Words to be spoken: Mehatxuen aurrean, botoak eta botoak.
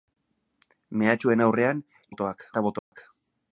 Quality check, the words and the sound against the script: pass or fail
fail